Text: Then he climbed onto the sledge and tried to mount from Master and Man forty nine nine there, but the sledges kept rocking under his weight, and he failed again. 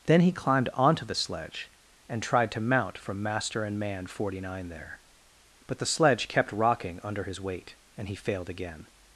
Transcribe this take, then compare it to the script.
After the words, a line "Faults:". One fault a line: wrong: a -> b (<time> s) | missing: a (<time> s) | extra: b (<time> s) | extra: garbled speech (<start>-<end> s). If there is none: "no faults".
Then he climbed onto the sledge and tried to mount from Master and Man forty nine there, but the sledge kept rocking under his weight, and he failed again.
Faults:
missing: nine (4.7 s)
wrong: sledges -> sledge (5.8 s)